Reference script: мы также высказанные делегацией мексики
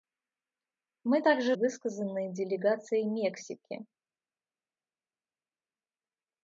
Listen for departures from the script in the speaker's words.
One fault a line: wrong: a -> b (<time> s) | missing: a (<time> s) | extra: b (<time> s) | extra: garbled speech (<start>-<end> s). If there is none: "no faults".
no faults